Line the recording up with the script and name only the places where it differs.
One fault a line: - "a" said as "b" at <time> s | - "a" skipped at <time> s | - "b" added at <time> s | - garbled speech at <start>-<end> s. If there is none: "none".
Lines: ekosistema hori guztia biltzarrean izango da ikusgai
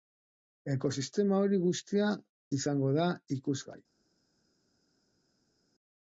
- "biltzarrean" skipped at 2.1 s